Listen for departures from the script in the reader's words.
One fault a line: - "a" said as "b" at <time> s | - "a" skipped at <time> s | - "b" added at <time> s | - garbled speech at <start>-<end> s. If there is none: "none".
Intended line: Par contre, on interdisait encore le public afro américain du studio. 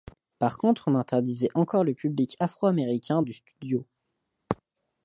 none